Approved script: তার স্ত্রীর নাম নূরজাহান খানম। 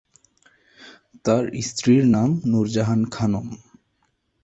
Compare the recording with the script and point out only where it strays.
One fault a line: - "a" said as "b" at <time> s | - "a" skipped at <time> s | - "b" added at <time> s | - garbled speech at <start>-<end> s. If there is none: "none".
none